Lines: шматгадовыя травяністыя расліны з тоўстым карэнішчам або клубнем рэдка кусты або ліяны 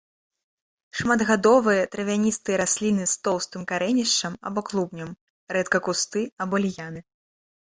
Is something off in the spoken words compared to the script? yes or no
no